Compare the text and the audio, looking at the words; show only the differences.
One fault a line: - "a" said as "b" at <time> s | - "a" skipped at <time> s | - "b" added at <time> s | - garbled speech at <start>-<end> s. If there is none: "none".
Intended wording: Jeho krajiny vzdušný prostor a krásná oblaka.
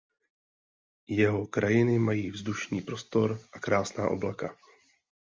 - "mají" added at 2.0 s